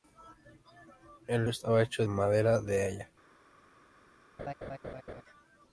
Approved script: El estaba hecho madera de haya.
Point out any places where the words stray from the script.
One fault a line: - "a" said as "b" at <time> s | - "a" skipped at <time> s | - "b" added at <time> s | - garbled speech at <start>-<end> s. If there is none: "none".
none